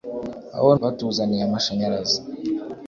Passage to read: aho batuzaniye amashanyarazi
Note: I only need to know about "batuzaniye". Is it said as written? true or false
true